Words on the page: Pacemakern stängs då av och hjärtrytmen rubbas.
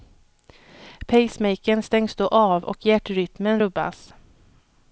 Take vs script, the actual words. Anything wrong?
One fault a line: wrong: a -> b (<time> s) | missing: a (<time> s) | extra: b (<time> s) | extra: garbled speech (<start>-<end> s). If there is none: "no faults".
no faults